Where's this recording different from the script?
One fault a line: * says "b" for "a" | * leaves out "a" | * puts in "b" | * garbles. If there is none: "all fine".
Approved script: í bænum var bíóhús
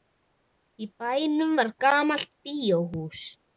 * puts in "gamalt"